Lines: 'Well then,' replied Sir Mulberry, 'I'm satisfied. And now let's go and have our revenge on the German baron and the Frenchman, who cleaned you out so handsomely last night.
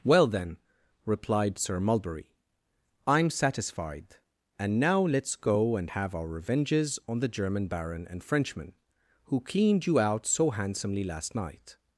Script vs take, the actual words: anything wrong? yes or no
yes